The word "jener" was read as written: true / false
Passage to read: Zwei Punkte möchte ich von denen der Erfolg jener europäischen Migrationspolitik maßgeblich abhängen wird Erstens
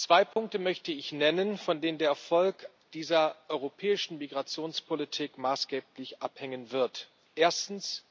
false